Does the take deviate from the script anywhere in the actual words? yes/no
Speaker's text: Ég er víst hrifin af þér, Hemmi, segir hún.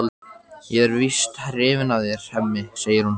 no